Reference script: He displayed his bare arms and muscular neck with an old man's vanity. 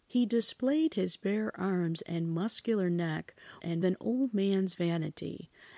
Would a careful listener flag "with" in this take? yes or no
yes